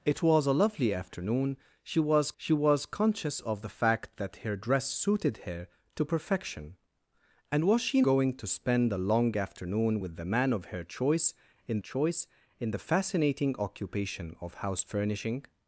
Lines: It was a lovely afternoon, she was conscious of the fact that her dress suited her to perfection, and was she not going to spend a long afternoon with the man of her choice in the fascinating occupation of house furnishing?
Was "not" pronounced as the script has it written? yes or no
no